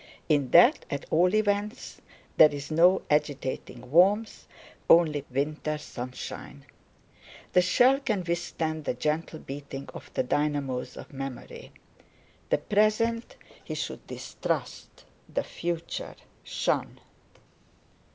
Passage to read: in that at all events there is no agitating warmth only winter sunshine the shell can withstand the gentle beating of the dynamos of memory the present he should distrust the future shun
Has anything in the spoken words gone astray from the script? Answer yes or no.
no